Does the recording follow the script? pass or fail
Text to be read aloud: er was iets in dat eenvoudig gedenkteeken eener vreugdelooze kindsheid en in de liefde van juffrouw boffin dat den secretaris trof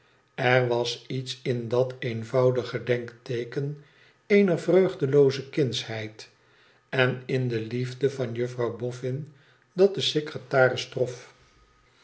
pass